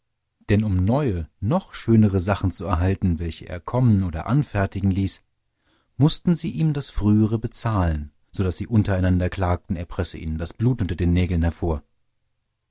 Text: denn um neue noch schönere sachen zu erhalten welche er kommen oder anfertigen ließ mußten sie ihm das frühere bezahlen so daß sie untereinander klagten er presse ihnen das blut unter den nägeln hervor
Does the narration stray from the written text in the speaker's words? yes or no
no